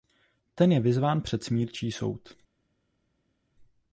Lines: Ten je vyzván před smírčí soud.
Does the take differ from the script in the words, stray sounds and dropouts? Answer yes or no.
no